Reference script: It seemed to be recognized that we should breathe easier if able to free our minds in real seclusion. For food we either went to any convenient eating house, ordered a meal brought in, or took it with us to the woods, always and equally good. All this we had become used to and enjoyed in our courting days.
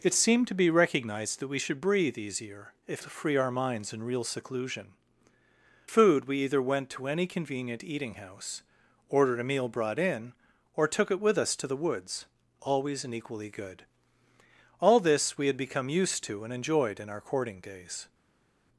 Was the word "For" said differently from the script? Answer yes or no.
yes